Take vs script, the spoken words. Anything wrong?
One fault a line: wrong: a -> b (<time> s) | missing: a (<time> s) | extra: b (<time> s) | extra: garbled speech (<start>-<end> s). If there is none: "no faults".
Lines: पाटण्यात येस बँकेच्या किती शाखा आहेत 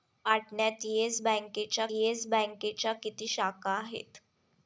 extra: येस बँकेच्या (1.9 s)